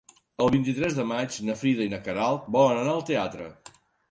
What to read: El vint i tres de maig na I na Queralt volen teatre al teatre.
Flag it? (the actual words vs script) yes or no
yes